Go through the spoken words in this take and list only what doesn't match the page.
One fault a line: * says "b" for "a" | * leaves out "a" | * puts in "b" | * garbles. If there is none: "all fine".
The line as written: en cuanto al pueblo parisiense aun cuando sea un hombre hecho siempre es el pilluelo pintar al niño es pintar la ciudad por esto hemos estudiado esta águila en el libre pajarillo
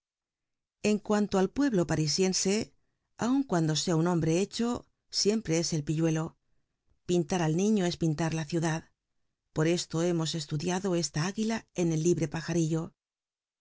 all fine